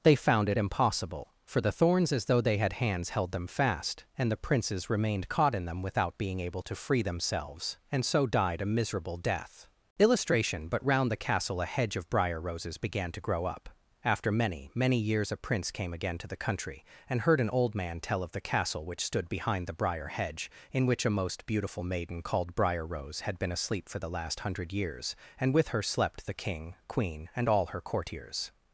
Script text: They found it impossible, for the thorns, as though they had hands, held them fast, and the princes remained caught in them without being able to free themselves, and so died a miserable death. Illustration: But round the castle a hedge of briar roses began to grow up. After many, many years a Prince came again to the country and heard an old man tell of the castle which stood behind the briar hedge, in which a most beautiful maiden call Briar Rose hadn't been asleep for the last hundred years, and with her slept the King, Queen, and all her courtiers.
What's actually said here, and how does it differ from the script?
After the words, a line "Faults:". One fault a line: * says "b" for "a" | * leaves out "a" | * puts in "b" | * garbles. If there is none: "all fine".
They found it impossible, for the thorns, as though they had hands, held them fast, and the princes remained caught in them without being able to free themselves, and so died a miserable death. Illustration: But round the castle a hedge of briar roses began to grow up. After many, many years a Prince came again to the country and heard an old man tell of the castle which stood behind the briar hedge, in which a most beautiful maiden called Briar Rose had been asleep for the last hundred years, and with her slept the King, Queen, and all her courtiers.
Faults:
* says "called" for "call"
* says "had" for "hadn't"